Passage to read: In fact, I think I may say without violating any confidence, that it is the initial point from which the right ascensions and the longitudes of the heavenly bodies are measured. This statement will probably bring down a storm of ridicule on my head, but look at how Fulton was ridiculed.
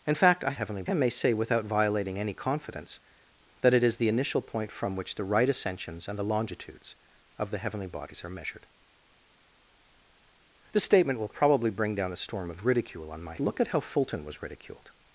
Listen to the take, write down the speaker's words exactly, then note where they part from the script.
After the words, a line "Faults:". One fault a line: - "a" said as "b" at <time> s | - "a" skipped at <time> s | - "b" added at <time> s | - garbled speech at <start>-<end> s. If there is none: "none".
In fact, I heavenly I may say without violating any confidence, that it is the initial point from which the right ascensions and the longitudes of the heavenly bodies are measured. This statement will probably bring down a storm of ridicule on my look at how Fulton was ridiculed.
Faults:
- "think" said as "heavenly" at 0.5 s
- "head but" skipped at 13.3 s